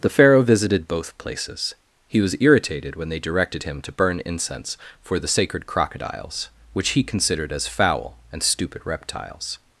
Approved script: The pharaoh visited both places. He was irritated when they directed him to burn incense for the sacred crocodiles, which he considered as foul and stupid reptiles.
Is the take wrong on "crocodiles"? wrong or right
right